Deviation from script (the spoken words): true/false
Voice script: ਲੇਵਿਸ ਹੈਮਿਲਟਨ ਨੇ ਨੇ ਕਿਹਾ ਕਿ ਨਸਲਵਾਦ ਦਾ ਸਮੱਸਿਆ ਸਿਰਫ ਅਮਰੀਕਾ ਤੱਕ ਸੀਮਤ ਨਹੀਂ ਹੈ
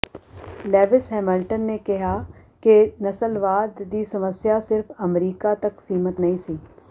true